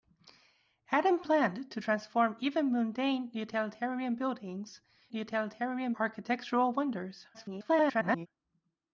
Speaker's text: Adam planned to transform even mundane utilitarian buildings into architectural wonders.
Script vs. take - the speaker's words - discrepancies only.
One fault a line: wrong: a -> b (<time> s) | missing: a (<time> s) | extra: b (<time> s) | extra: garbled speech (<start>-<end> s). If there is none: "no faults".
wrong: into -> utilitarian (5.1 s)
extra: garbled speech (7.3-8.3 s)